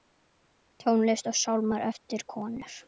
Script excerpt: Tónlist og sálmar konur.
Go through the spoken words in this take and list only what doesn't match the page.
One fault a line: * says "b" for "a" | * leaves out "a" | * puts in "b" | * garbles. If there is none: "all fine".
* puts in "eftir"